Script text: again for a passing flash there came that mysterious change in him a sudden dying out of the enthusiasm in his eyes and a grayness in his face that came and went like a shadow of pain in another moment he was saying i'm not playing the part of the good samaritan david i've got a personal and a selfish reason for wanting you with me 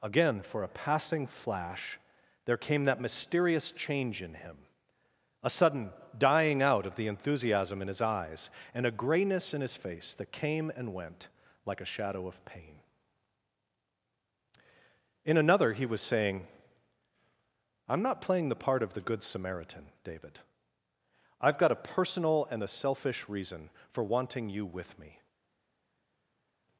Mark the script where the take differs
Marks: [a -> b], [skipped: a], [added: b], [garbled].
again for a passing flash there came that mysterious change in him a sudden dying out of the enthusiasm in his eyes and a grayness in his face that came and went like a shadow of pain in another [skipped: moment] he was saying i'm not playing the part of the good samaritan david i've got a personal and a selfish reason for wanting you with me